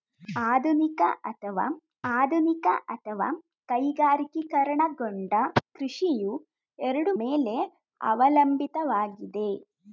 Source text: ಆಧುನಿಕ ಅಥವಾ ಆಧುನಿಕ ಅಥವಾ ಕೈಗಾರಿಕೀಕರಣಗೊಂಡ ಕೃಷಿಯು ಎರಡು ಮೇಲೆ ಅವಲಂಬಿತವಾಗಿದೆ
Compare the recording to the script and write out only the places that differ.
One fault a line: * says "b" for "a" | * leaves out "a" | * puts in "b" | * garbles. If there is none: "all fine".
all fine